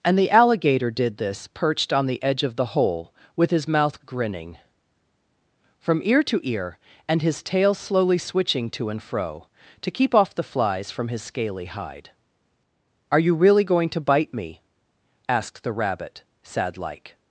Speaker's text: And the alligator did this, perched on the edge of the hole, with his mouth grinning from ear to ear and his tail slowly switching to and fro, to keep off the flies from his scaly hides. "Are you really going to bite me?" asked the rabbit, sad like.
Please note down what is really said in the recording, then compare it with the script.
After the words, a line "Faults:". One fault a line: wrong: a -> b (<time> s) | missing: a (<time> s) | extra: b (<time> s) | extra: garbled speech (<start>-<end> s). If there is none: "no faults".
And the alligator did this, perched on the edge of the hole, with his mouth grinning from ear to ear and his tail slowly switching to and fro, to keep off the flies from his scaly hide. "Are you really going to bite me?" asked the rabbit, sad like.
Faults:
wrong: hides -> hide (11.7 s)